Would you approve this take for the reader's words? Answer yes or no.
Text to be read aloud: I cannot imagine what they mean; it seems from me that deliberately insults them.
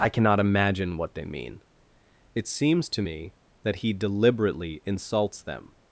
no